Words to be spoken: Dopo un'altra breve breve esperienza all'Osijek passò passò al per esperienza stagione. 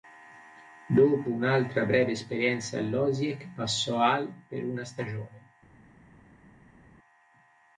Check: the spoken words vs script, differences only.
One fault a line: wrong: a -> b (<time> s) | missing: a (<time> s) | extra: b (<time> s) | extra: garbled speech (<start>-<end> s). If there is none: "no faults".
missing: breve (2.1 s)
missing: passò (4.0 s)
wrong: esperienza -> una (4.6 s)